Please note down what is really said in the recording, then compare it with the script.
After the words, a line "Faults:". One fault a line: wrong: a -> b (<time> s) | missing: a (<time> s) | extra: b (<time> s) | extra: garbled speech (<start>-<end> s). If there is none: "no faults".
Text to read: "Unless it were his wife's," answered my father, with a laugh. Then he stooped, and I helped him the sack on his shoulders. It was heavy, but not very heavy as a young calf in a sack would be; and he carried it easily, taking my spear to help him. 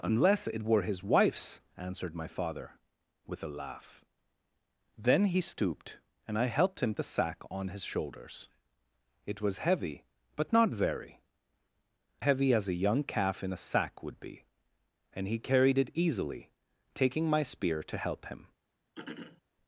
"Unless it were his wife's," answered my father, with a laugh. Then he stooped, and I helped him the sack on his shoulders. It was heavy, but not very heavy as a young calf in a sack would be; and he carried it easily, taking my spear to help him.
Faults:
no faults